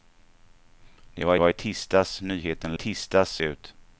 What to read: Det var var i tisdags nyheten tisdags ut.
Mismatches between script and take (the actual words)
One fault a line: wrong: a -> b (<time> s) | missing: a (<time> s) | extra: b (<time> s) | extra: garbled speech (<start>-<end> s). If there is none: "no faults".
no faults